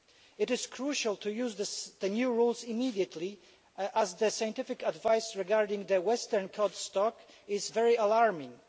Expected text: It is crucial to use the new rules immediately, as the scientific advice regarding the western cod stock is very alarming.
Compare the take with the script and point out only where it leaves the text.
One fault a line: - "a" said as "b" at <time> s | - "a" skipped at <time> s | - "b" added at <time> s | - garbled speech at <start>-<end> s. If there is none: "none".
none